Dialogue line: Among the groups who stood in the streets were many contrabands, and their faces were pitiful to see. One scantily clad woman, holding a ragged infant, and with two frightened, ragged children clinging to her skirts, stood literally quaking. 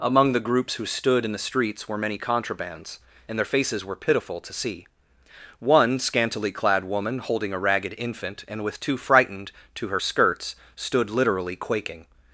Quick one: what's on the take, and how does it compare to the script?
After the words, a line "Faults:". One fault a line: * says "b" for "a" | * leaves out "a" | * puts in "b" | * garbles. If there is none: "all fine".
Among the groups who stood in the streets were many contrabands, and their faces were pitiful to see. One scantily clad woman, holding a ragged infant, and with two frightened, to her skirts, stood literally quaking.
Faults:
* leaves out "ragged children clinging"